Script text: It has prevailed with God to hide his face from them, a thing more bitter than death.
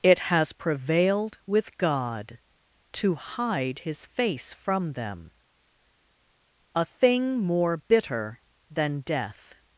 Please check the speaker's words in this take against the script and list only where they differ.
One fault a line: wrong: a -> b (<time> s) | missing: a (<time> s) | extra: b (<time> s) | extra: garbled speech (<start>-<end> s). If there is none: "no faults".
no faults